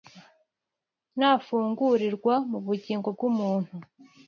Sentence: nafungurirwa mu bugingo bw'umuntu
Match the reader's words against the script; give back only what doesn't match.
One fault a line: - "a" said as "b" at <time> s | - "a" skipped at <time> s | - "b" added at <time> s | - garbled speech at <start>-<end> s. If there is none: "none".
none